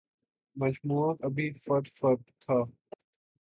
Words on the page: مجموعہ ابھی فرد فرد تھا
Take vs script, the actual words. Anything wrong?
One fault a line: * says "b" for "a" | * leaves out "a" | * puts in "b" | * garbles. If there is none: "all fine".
all fine